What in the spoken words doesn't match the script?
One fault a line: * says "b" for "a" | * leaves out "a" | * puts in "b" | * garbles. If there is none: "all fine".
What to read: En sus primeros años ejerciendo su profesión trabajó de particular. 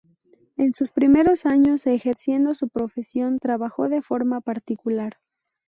* puts in "forma"